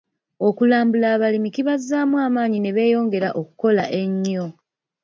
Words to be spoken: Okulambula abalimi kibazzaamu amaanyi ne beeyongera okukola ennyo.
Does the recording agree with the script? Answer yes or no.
yes